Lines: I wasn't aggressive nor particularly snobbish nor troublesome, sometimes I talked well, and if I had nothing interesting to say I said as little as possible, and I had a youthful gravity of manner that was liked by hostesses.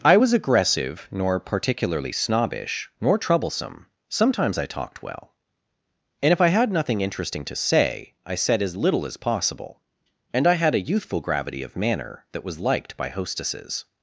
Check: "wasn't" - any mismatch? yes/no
yes